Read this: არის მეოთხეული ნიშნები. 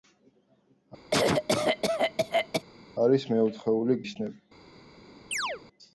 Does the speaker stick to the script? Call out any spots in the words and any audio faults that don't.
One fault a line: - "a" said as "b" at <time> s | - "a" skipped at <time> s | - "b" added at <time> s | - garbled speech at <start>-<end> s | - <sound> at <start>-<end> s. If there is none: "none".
- cough at 1.1-2.6 s
- chirp at 5.3-5.6 s